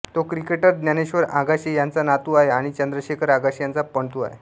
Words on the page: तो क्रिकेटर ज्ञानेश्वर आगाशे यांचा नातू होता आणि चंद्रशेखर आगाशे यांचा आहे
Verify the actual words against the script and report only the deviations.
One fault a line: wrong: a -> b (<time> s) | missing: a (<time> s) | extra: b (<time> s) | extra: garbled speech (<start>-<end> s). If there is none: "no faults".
wrong: होता -> आहे (2.3 s)
extra: पणतू (3.8 s)